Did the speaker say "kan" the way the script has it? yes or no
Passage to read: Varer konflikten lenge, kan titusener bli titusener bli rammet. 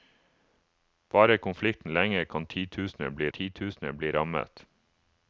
yes